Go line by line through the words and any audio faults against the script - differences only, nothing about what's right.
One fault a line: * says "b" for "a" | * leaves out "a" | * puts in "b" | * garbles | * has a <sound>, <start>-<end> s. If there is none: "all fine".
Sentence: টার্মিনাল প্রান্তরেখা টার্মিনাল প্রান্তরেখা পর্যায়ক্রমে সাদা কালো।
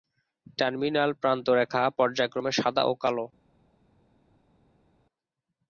* leaves out "টার্মিনাল প্রান্তরেখা"
* puts in "ও"